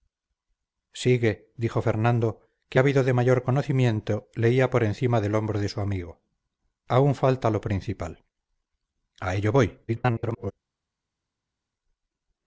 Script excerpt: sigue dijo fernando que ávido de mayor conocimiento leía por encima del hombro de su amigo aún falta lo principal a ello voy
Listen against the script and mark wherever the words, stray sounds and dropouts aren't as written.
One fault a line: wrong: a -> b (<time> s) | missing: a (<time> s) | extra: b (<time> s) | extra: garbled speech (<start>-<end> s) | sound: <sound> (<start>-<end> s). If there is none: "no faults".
extra: garbled speech (9.9-10.5 s)